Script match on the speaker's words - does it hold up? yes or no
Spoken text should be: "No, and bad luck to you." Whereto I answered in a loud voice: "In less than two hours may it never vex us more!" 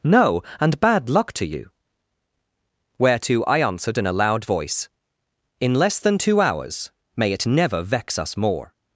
yes